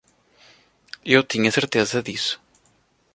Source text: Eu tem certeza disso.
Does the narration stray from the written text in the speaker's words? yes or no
yes